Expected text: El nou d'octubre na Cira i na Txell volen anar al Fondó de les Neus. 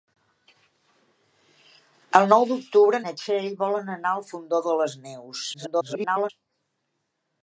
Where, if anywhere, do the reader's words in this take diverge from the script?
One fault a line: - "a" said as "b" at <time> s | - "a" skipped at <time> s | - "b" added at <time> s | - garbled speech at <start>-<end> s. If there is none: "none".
- "na Cira" skipped at 3.0 s
- garbled speech at 5.5-6.3 s